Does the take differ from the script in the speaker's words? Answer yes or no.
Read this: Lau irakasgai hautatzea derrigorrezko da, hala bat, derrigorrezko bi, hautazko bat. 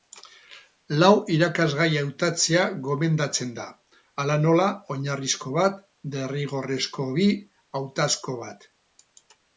yes